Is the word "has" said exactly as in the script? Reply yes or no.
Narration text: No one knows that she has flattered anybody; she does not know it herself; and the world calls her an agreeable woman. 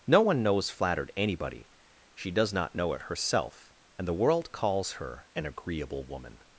no